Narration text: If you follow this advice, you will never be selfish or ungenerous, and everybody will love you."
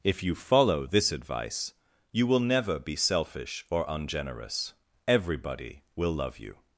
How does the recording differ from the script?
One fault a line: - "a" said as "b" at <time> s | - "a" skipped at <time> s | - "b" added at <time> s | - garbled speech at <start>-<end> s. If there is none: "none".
- "and" skipped at 4.7 s